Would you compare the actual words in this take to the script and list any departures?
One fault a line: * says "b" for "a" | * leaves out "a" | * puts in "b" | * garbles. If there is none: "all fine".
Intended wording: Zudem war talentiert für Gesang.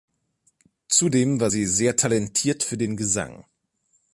* puts in "sie sehr"
* puts in "den"